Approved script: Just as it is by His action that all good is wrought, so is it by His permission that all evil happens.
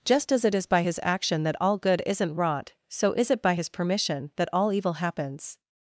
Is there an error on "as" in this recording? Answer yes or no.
no